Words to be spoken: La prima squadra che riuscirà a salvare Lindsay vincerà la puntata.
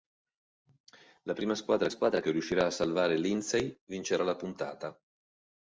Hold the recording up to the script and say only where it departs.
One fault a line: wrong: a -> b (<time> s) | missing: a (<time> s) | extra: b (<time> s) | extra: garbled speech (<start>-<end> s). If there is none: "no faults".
extra: squadra (1.9 s)